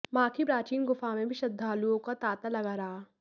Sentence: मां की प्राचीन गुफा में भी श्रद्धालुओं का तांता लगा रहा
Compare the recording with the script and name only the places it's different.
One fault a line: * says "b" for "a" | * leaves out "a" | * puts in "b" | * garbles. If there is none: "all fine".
all fine